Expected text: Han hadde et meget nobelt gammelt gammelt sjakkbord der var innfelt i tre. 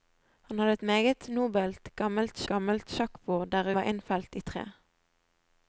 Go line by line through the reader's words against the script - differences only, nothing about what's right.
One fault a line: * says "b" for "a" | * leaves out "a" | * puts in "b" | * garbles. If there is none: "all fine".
all fine